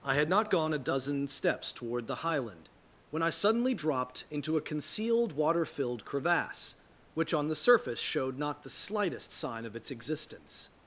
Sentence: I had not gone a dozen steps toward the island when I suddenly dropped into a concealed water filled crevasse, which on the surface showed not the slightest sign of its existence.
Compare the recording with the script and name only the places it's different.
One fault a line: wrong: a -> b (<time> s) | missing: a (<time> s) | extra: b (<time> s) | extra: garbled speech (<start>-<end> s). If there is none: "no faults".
wrong: island -> highland (2.2 s)